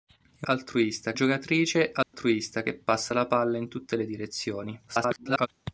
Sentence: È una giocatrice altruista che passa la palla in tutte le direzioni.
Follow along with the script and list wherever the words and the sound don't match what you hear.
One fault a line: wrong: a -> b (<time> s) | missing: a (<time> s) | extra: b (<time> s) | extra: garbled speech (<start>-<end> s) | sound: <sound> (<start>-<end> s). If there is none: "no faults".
wrong: una -> altruista (0.4 s)
sound: dropout (2.0-2.1 s)
extra: garbled speech (4.9-5.5 s)